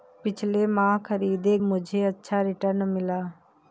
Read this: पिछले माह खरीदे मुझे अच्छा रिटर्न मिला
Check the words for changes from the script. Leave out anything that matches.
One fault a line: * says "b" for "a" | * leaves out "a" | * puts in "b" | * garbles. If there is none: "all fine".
all fine